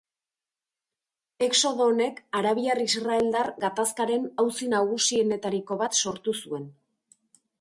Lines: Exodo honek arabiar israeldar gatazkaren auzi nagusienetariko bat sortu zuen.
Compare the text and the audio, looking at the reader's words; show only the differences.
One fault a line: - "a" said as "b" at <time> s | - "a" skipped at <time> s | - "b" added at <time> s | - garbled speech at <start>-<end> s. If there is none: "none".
none